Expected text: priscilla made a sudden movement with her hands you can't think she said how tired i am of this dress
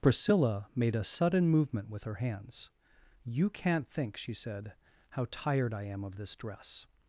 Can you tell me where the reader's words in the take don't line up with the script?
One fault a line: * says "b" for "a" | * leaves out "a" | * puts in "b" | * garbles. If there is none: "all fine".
all fine